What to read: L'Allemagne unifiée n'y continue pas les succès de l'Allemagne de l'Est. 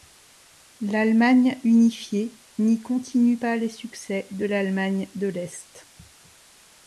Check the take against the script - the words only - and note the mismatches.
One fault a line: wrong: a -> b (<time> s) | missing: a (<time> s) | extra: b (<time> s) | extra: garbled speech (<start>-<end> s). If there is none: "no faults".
no faults